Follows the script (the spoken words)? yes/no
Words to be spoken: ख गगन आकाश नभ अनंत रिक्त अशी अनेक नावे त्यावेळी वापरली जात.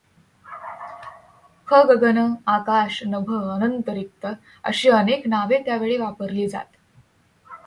yes